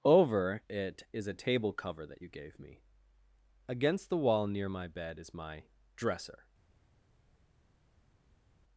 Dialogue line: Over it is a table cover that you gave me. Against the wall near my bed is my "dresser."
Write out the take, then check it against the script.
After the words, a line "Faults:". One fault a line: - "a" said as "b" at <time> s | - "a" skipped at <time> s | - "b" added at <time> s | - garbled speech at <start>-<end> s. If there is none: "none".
Over it is a table cover that you gave me. Against the wall near my bed is my "dresser."
Faults:
none